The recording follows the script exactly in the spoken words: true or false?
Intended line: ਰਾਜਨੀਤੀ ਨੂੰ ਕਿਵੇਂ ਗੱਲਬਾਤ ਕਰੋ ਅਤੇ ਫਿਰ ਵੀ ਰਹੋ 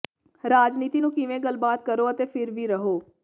true